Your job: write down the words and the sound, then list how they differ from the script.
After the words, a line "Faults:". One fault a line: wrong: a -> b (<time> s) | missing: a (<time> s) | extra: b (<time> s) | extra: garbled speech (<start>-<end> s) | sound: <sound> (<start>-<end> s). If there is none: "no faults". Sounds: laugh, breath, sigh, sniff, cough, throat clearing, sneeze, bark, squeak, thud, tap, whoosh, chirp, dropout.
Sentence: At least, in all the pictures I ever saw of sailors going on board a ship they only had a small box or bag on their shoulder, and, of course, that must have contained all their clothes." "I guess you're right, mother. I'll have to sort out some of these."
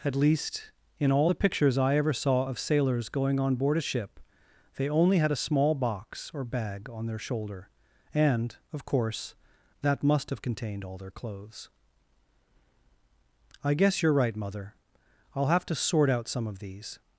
At least, in all the pictures I ever saw of sailors going on board a ship they only had a small box or bag on their shoulder, and, of course, that must have contained all their clothes." "I guess you're right, mother. I'll have to sort out some of these."
Faults:
no faults